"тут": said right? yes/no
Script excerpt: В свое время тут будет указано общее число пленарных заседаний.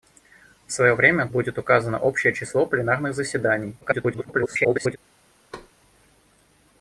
no